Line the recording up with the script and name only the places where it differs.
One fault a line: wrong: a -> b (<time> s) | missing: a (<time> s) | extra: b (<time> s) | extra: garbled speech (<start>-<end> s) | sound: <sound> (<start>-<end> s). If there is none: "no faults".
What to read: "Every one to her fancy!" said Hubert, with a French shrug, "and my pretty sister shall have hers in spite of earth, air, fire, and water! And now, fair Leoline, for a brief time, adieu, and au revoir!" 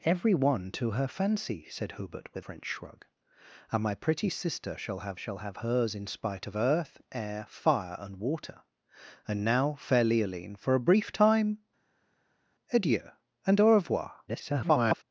missing: a (2.4 s)
extra: shall have (5.2 s)
extra: garbled speech (14.3-15.0 s)